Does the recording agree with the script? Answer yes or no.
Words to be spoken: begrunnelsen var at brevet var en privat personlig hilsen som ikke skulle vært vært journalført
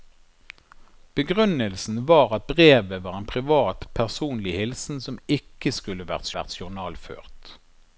yes